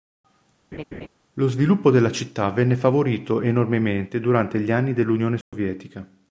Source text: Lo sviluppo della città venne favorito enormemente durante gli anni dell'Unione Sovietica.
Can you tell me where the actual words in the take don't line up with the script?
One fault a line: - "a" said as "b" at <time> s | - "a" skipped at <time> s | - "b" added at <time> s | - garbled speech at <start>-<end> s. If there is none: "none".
none